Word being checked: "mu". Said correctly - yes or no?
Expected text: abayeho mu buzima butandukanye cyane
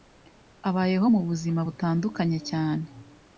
yes